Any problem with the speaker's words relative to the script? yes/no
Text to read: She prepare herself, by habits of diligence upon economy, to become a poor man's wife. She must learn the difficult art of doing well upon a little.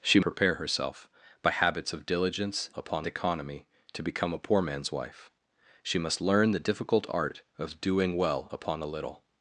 no